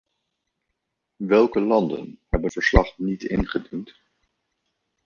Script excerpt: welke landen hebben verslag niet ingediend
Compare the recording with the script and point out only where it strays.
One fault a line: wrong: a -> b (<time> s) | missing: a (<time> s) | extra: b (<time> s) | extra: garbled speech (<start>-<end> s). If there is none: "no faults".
no faults